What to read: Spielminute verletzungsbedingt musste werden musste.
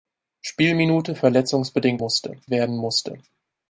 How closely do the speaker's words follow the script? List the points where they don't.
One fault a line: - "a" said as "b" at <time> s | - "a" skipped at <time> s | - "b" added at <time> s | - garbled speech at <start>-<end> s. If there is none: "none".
none